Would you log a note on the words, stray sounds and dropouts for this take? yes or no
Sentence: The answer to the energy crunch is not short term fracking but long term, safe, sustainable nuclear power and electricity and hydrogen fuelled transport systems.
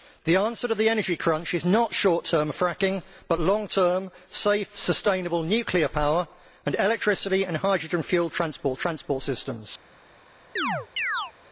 yes